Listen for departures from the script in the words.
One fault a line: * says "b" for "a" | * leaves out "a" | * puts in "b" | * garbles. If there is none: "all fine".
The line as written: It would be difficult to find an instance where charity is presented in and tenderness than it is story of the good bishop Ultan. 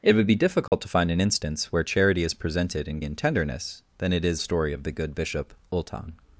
all fine